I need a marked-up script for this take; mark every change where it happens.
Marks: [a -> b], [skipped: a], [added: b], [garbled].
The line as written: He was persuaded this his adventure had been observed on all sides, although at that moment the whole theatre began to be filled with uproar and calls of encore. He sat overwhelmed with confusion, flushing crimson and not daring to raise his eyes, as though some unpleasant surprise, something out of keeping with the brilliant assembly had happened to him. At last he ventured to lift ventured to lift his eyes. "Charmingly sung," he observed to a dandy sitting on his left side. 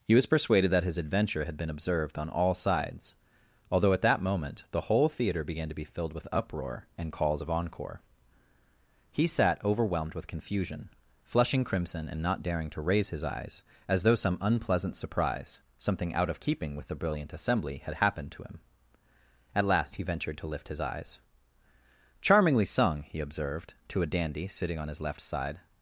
He was persuaded [this -> that] his adventure had been observed on all sides, although at that moment the whole theatre began to be filled with uproar and calls of encore. He sat overwhelmed with confusion, flushing crimson and not daring to raise his eyes, as though some unpleasant surprise, something out of keeping with the brilliant assembly had happened to him. At last he ventured to lift [skipped: ventured to lift] his eyes. "Charmingly sung," he observed to a dandy sitting on his left side.